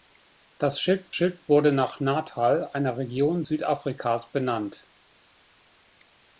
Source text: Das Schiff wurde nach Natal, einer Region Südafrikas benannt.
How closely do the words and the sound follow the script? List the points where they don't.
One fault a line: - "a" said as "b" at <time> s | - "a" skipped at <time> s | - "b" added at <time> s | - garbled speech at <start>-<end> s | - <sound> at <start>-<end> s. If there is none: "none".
- "Schiff" added at 1.1 s